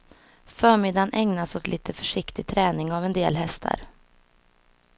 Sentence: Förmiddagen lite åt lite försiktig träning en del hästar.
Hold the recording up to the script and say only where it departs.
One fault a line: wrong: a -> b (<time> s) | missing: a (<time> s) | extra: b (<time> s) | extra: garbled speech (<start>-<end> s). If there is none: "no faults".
wrong: lite -> ägnas (1.1 s)
extra: av (2.9 s)